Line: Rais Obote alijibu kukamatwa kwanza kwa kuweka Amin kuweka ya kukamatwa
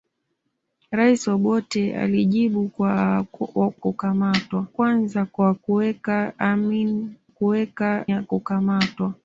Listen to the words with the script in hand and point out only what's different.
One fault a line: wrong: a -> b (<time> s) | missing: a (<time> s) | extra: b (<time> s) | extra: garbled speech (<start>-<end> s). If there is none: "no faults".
no faults